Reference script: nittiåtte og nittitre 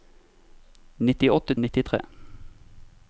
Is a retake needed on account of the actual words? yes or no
no